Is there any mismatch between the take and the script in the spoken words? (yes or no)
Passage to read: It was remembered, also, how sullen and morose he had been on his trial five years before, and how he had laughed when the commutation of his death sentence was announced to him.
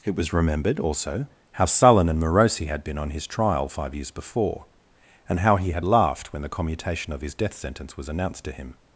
no